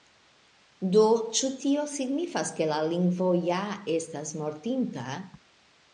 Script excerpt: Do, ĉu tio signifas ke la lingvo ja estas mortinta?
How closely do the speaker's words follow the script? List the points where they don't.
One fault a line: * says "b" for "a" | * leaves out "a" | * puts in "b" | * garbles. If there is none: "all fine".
all fine